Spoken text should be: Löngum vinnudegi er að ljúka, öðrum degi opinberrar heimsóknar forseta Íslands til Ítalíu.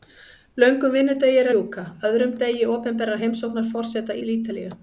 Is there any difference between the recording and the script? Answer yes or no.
yes